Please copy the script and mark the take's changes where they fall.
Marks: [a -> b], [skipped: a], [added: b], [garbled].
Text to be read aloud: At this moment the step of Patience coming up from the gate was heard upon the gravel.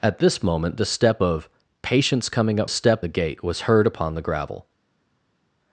At this moment the step of Patience coming up [from -> step] the gate was heard upon the gravel.